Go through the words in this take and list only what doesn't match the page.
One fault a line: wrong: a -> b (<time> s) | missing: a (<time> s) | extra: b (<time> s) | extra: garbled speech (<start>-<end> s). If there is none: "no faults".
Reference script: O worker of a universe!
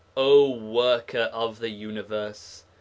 wrong: a -> the (1.6 s)